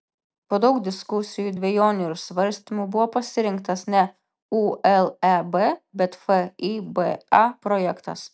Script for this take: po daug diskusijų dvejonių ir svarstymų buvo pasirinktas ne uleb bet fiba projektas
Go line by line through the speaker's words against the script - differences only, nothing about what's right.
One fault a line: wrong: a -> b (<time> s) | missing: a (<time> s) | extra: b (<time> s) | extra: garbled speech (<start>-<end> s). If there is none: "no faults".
no faults